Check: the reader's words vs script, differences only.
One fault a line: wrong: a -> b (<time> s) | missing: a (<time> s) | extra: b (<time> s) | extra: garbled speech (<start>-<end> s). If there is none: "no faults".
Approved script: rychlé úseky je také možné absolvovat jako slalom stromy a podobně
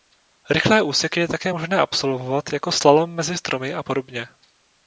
extra: mezi (3.1 s)